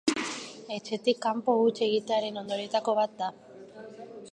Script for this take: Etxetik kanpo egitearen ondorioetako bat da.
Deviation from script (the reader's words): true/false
true